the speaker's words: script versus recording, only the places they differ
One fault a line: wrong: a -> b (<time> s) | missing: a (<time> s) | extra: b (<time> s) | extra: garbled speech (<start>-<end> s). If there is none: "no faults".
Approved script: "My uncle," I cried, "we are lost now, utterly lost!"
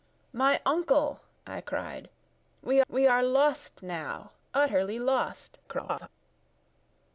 extra: we (2.9 s)
extra: garbled speech (5.6-6.1 s)